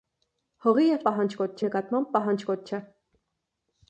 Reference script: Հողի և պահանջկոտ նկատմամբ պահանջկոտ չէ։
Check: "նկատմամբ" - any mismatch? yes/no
no